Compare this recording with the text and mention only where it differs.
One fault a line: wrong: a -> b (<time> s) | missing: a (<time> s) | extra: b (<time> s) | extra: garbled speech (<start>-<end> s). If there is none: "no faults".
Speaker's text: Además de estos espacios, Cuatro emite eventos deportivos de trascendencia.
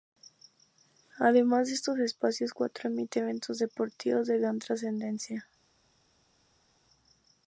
extra: gran (4.4 s)